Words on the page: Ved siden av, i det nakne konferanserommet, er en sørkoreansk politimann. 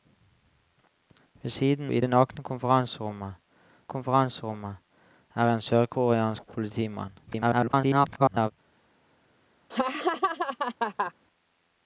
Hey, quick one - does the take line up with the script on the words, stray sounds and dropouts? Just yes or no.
no